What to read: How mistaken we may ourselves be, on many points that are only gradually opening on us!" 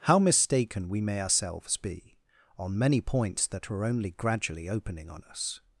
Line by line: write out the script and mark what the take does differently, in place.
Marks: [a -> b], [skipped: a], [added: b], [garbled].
How mistaken we may ourselves be, on many points that are only gradually opening on us!"